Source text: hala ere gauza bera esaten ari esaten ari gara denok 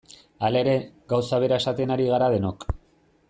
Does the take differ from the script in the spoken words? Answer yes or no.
yes